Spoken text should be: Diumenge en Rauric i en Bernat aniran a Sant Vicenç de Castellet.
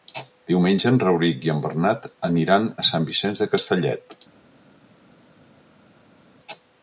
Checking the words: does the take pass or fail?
pass